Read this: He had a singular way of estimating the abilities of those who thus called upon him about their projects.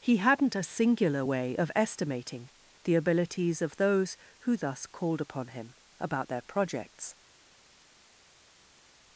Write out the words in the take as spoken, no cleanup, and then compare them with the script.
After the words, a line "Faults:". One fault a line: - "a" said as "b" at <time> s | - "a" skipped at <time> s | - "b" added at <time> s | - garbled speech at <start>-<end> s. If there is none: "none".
He hadn't a singular way of estimating the abilities of those who thus called upon him about their projects.
Faults:
- "had" said as "hadn't" at 0.2 s